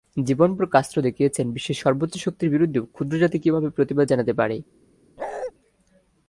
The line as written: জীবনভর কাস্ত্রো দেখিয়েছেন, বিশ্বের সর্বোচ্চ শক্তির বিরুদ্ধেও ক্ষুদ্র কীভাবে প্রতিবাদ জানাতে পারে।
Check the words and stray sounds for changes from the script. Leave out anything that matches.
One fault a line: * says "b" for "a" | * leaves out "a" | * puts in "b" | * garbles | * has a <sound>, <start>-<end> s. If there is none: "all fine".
* puts in "জাতি"
* has a bark, 5.2-5.5 s